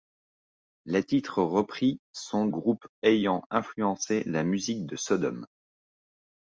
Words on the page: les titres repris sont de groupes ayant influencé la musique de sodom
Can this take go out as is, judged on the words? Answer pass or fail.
fail